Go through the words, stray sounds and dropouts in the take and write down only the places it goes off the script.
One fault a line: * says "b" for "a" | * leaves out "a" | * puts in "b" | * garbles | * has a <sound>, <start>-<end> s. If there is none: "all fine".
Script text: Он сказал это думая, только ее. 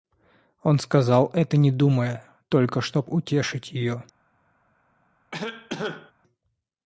* puts in "не"
* puts in "чтоб утешить"
* has a cough, 5.3-6.1 s